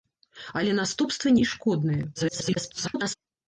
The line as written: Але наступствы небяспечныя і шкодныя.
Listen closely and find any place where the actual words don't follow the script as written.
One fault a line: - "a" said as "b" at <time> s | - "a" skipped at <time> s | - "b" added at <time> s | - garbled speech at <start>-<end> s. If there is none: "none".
- "небяспечныя" skipped at 1.3 s
- garbled speech at 2.2-3.2 s